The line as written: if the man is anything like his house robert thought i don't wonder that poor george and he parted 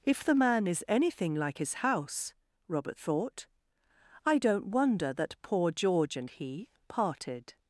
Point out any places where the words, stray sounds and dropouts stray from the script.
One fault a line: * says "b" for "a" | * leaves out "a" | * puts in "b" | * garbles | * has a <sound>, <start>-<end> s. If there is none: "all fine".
all fine